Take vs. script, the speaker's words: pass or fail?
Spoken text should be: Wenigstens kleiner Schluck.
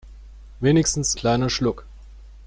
pass